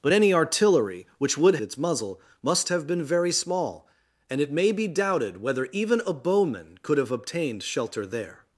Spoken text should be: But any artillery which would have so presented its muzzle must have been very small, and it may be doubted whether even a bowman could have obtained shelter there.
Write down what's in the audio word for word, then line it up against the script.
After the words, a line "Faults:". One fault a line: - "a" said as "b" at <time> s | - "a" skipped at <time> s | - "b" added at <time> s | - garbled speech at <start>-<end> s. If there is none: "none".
But any artillery which would its muzzle must have been very small, and it may be doubted whether even a bowman could have obtained shelter there.
Faults:
- "have so presented" skipped at 1.6 s